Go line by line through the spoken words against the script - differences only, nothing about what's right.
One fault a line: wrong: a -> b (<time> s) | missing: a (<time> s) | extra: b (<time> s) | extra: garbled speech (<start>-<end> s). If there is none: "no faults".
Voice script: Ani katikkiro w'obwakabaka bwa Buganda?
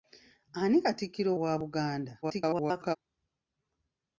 missing: w'obwakabaka (1.3 s)
extra: garbled speech (2.2-3.0 s)